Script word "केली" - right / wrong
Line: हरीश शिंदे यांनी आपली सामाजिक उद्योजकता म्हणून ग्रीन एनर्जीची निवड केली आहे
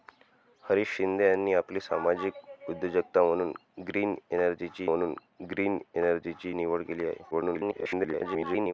right